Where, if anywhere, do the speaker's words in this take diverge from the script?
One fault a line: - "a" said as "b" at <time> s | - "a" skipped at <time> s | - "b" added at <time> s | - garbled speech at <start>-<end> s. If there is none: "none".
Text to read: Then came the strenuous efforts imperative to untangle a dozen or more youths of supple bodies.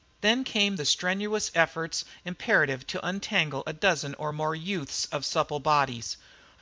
none